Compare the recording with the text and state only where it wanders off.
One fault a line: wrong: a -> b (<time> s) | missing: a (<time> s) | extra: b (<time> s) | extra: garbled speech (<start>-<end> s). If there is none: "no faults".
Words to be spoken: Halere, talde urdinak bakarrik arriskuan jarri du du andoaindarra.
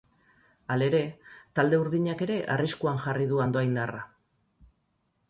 wrong: bakarrik -> ere (2.3 s)
missing: du (3.4 s)